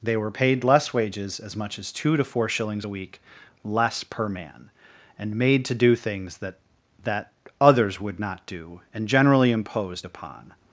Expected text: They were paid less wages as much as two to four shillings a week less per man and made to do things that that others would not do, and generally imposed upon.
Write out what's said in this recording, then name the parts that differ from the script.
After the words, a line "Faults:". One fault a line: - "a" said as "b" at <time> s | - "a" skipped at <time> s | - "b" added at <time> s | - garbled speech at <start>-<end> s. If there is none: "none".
They were paid less wages as much as two to four shillings a week less per man and made to do things that that others would not do, and generally imposed upon.
Faults:
none